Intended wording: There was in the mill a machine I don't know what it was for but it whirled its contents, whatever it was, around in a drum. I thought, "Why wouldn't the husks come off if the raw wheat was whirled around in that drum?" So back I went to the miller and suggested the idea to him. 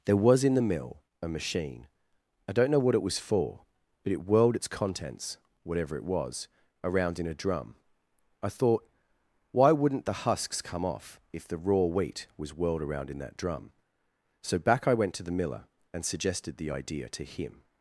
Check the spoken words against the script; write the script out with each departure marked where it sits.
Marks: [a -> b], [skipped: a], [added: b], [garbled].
There was in the mill a machine I don't know what it was for but it whirled its contents, whatever it was, around in a drum. I thought, "Why wouldn't the husks come off if the raw wheat was whirled around in that drum?" So back I went to the miller and suggested the idea to him.